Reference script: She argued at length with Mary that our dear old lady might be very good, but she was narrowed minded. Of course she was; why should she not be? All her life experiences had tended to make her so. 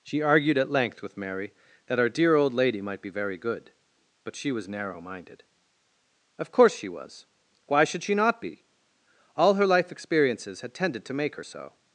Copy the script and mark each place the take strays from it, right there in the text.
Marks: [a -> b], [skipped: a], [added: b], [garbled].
She argued at length with Mary that our dear old lady might be very good, but she was [narrowed -> narrow] minded. Of course she was; why should she not be? All her life experiences had tended to make her so.